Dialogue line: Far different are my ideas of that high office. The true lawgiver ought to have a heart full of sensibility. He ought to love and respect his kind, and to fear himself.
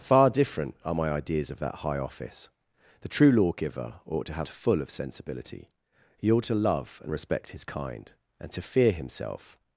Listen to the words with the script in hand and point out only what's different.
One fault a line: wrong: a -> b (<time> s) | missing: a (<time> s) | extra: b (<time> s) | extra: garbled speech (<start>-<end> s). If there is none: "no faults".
missing: a heart (4.5 s)